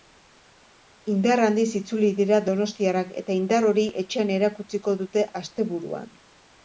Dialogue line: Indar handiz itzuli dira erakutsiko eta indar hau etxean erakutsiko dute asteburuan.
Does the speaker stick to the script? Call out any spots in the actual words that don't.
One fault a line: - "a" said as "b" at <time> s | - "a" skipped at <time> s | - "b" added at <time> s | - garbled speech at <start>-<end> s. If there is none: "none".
- "erakutsiko" said as "donostiarrak" at 2.5 s
- "hau" said as "hori" at 3.7 s